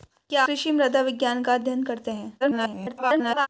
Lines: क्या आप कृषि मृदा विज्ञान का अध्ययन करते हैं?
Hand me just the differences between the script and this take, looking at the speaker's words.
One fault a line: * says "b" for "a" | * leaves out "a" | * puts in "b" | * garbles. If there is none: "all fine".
* leaves out "आप"
* garbles